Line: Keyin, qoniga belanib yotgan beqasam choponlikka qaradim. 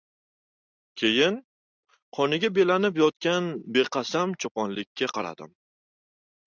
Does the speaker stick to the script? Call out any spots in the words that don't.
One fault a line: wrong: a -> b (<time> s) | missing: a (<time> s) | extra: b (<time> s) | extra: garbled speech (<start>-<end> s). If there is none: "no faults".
no faults